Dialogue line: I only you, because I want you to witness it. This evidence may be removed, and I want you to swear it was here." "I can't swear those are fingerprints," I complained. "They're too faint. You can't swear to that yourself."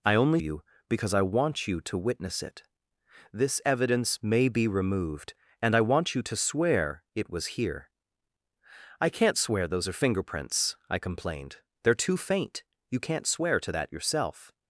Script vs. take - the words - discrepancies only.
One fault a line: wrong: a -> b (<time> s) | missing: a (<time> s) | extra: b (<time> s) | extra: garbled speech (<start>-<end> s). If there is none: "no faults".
no faults